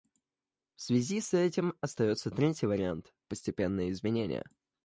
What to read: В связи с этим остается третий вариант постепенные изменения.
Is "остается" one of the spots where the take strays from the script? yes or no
no